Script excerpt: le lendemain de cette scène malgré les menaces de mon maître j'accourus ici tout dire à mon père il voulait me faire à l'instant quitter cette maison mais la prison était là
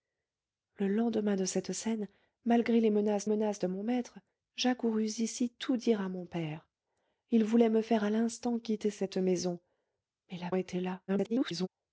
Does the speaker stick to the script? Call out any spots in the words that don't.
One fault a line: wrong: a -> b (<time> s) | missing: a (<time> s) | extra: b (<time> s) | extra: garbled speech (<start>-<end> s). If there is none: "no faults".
extra: menaces (3.2 s)
missing: prison (10.5 s)
extra: garbled speech (11.1-11.7 s)